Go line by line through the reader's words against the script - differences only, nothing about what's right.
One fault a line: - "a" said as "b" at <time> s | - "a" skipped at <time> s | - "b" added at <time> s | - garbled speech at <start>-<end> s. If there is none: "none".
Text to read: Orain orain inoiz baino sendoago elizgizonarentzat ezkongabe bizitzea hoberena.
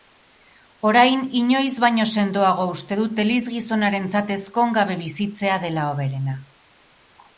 - "orain" skipped at 1.2 s
- "uste dut" added at 2.8 s
- "dela" added at 5.7 s